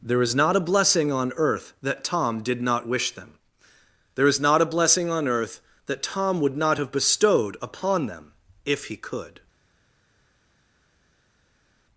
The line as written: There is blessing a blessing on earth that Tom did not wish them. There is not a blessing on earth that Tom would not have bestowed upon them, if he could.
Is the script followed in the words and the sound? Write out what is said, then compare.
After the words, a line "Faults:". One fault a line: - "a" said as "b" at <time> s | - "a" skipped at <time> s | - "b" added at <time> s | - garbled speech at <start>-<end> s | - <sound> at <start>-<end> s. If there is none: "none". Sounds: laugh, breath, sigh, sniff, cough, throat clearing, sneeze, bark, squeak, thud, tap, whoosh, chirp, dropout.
There is not a blessing on earth that Tom did not wish them. There is not a blessing on earth that Tom would not have bestowed upon them, if he could.
Faults:
- "blessing" said as "not" at 0.3 s